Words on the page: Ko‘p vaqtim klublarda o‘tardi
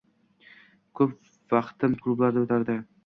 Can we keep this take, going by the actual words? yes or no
yes